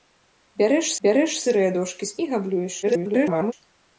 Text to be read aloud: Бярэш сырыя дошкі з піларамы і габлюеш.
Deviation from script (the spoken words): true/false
true